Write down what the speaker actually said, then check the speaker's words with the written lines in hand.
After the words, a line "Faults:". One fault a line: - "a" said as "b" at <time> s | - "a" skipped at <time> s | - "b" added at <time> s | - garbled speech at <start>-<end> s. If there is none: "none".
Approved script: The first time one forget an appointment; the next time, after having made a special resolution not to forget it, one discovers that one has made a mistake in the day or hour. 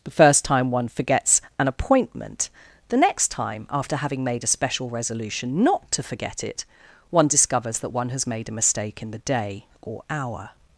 The first time one forgets an appointment; the next time, after having made a special resolution not to forget it, one discovers that one has made a mistake in the day or hour.
Faults:
- "forget" said as "forgets" at 0.9 s